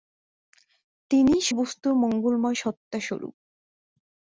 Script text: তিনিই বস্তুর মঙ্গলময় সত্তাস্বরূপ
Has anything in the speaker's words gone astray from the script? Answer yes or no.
no